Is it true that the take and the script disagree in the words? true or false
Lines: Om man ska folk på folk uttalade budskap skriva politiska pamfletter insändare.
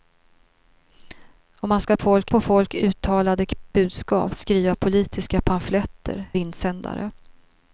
false